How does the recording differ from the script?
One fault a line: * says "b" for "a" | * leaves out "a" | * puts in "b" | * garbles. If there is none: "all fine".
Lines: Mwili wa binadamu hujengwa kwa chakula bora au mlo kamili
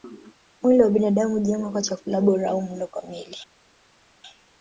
all fine